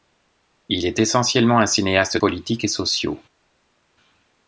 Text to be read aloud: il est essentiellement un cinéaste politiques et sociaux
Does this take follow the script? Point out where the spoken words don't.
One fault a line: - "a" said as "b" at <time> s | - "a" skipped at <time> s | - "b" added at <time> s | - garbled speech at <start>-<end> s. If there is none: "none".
none